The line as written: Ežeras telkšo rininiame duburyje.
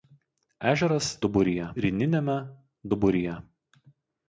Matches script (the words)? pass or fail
fail